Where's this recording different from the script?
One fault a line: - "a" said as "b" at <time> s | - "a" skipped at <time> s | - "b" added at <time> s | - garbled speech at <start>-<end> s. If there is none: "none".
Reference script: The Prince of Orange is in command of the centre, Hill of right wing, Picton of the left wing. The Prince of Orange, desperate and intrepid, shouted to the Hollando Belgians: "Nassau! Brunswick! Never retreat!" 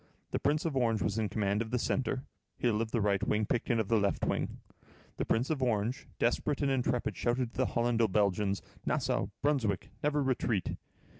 - "is" said as "was" at 1.0 s
- "the" added at 2.9 s